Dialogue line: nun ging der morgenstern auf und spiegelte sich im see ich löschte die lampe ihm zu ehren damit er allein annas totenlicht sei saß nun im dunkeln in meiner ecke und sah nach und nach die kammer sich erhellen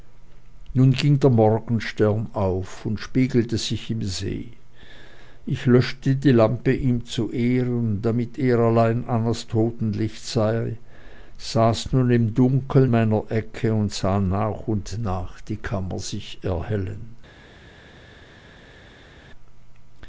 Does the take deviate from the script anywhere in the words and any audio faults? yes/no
yes